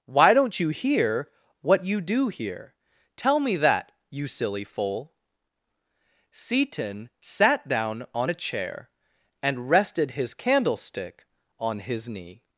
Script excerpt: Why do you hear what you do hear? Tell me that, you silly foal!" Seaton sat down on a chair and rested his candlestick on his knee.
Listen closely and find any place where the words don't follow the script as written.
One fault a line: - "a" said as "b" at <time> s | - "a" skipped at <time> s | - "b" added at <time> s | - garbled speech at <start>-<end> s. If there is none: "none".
- "do" said as "don't" at 0.3 s